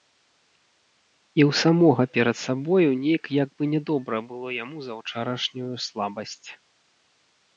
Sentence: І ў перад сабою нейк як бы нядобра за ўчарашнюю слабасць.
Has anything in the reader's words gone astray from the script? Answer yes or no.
yes